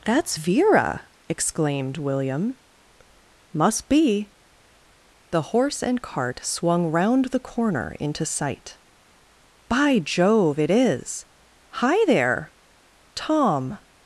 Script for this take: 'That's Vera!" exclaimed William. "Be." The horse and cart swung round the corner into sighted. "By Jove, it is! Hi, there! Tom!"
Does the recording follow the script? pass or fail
fail